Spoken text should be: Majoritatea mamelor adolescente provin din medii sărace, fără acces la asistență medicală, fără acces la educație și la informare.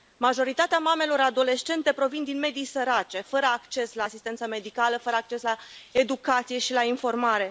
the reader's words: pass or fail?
pass